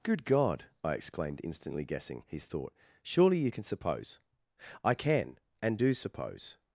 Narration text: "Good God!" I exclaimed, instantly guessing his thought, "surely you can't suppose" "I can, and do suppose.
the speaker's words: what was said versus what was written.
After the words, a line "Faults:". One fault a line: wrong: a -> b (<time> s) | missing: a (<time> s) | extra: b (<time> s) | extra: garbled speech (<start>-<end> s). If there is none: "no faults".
"Good God!" I exclaimed, instantly guessing his thought, "surely you can suppose" "I can, and do suppose.
Faults:
wrong: can't -> can (3.5 s)